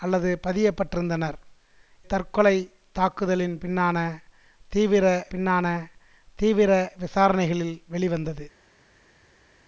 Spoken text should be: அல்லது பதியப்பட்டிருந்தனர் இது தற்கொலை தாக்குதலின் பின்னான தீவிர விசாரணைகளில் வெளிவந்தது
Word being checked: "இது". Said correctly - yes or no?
no